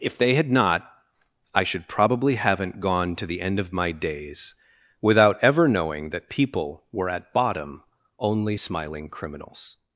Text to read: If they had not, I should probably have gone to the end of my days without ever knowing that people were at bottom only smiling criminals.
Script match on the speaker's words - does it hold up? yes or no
no